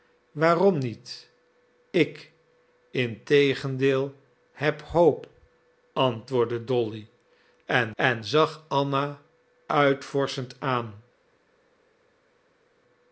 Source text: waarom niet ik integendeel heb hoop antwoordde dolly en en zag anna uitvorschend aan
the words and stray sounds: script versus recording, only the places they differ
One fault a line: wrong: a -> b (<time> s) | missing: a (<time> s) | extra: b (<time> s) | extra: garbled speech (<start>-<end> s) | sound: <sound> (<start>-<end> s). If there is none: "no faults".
no faults